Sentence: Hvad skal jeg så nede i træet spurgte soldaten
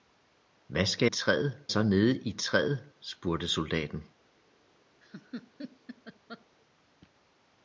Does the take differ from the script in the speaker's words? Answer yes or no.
yes